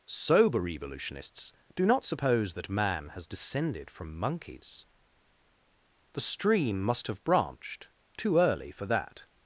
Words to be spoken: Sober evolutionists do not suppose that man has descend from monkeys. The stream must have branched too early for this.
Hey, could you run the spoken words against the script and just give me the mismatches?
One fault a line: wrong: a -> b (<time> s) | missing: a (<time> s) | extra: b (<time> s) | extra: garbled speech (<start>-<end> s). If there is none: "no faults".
wrong: descend -> descended (3.3 s)
wrong: this -> that (8.9 s)